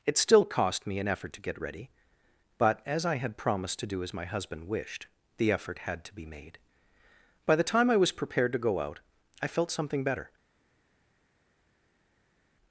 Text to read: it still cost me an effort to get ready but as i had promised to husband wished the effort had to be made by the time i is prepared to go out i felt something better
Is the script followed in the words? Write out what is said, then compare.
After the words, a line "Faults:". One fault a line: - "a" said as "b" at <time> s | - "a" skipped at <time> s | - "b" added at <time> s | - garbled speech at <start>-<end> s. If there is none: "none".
it still cost me an effort to get ready but as i had promised to do as my husband wished the effort had to be made by the time i was prepared to go out i felt something better
Faults:
- "do as my" added at 3.9 s
- "is" said as "was" at 8.0 s